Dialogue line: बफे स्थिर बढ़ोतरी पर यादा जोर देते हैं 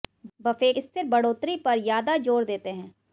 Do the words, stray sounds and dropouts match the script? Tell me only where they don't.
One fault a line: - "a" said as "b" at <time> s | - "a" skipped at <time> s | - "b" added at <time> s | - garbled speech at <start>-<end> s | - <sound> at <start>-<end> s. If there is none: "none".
none